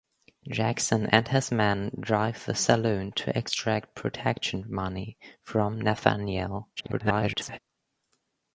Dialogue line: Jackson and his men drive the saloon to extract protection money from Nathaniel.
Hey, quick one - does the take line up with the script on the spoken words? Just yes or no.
no